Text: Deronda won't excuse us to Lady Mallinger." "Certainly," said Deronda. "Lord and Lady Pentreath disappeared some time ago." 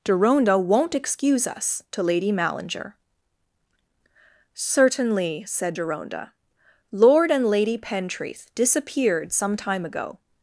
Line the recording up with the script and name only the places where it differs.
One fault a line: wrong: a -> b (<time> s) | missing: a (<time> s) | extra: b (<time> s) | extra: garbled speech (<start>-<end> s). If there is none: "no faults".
no faults